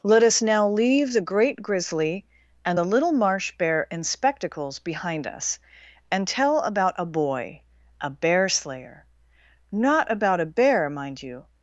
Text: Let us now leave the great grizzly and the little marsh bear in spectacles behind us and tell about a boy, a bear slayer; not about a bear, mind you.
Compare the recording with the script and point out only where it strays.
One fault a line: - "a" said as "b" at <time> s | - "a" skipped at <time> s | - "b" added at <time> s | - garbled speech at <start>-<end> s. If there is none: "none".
none